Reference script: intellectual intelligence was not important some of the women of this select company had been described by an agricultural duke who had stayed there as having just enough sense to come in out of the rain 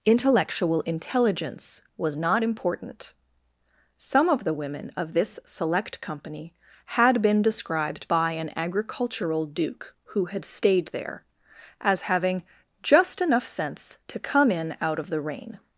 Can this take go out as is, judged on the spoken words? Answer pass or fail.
pass